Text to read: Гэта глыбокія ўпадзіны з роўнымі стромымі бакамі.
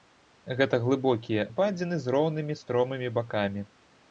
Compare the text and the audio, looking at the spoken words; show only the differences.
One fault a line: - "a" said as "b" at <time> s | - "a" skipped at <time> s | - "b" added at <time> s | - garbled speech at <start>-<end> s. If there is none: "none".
none